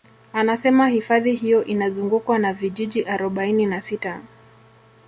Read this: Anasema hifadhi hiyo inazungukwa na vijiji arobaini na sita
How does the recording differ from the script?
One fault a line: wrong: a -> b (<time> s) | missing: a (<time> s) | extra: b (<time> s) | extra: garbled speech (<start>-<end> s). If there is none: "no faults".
no faults